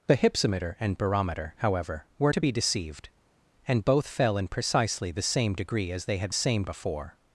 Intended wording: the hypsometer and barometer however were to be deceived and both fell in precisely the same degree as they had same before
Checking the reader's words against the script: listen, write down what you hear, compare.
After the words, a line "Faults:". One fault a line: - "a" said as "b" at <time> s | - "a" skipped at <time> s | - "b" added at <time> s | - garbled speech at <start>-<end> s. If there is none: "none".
the hypsometer and barometer however were to be deceived and both fell in precisely the same degree as they had same before
Faults:
none